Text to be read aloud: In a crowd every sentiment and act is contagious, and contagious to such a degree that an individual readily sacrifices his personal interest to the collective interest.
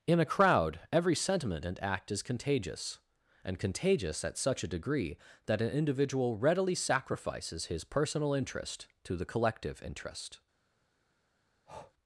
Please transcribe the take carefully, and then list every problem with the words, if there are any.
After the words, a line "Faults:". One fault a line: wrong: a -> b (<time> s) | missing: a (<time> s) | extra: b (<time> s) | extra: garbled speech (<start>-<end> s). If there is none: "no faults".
In a crowd every sentiment and act is contagious, and contagious at such a degree that an individual readily sacrifices his personal interest to the collective interest.
Faults:
wrong: to -> at (4.2 s)